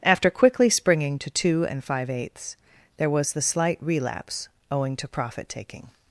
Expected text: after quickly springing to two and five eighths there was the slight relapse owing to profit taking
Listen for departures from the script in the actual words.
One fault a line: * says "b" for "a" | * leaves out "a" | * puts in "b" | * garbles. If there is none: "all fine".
all fine